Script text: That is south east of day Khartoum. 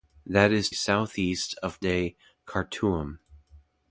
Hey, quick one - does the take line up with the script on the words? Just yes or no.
yes